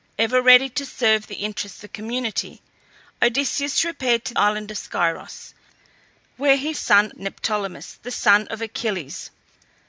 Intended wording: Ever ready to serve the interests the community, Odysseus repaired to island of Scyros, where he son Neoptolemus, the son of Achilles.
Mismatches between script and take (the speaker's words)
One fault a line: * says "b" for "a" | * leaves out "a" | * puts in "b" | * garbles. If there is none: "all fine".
all fine